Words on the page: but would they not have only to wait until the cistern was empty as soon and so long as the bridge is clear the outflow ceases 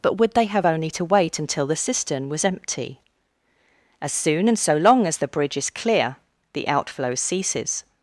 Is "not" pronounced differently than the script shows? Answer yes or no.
yes